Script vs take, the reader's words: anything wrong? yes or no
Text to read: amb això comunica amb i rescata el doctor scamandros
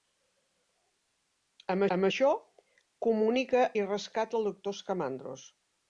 yes